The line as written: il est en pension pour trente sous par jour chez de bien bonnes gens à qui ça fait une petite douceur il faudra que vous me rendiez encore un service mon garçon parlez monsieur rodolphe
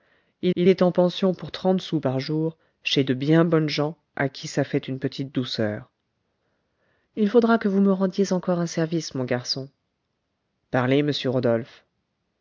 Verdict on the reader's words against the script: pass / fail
fail